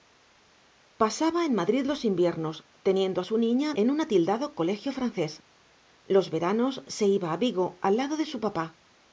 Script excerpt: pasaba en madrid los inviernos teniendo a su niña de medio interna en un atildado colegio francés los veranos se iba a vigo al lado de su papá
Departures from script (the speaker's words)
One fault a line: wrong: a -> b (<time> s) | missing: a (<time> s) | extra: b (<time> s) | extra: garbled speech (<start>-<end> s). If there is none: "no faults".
missing: de medio interna (3.7 s)